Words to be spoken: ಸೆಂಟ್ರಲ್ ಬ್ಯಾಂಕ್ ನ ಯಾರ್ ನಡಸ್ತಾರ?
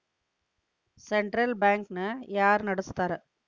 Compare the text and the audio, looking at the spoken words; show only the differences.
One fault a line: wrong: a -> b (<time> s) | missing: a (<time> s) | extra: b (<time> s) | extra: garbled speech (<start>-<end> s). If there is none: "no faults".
no faults